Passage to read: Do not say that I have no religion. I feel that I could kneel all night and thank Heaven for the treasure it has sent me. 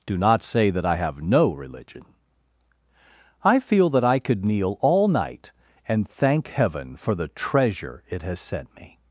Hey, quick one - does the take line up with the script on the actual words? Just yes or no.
yes